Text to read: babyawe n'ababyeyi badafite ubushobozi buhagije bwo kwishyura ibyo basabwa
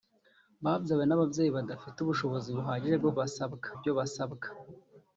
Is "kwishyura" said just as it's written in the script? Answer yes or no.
no